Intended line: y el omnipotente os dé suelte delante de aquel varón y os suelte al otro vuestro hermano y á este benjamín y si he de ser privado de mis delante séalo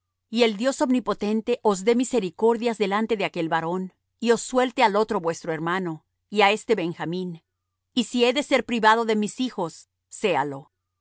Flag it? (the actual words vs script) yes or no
yes